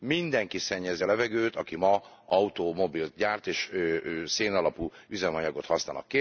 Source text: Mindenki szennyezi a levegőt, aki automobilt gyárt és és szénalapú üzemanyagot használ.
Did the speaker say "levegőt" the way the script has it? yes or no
yes